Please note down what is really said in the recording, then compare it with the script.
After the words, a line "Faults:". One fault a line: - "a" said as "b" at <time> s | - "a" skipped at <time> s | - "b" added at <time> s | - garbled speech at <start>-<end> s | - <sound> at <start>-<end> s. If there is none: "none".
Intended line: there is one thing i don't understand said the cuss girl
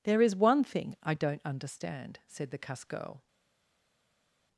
there is one thing i don't understand said the cuss girl
Faults:
none